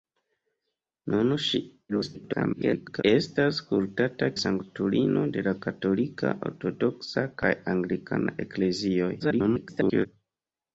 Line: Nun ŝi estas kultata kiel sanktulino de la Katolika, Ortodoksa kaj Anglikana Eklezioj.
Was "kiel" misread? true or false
true